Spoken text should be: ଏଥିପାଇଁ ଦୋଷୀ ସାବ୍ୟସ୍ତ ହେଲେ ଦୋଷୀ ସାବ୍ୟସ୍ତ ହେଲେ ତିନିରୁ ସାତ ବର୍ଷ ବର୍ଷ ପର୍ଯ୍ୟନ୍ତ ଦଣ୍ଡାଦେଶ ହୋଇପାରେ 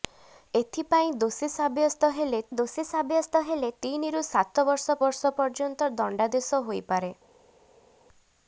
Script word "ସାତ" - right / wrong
right